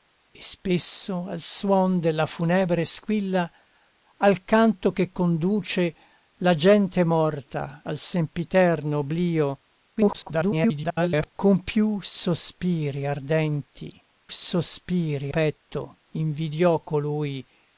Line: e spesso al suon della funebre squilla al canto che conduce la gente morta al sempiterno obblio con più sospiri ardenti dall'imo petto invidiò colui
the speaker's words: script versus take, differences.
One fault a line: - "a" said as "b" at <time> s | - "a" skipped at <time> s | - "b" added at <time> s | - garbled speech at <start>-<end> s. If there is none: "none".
- garbled speech at 10.0-11.3 s
- "dall'imo" said as "sospiri" at 14.3 s